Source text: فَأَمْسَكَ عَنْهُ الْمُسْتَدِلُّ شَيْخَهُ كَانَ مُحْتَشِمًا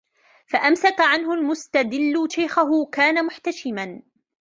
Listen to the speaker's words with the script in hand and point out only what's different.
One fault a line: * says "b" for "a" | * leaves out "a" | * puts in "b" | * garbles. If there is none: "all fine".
all fine